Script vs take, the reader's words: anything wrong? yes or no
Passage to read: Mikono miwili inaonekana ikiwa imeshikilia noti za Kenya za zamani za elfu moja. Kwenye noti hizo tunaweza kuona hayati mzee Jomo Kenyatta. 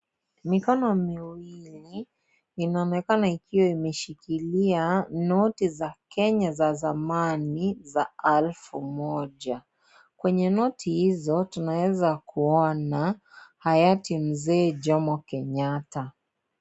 no